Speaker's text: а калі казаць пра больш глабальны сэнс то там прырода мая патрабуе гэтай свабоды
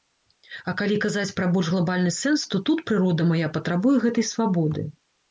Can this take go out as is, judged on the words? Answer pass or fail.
fail